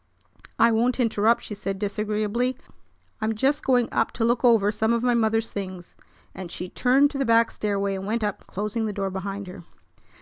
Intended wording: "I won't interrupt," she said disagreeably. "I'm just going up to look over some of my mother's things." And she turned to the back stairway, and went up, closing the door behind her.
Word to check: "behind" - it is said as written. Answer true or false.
true